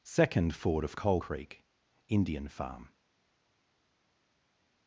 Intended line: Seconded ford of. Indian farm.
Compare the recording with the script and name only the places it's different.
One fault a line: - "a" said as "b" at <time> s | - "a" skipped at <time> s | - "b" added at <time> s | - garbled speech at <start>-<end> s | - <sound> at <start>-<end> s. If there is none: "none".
- "Seconded" said as "Second" at 0.0 s
- "Coal Creek" added at 1.0 s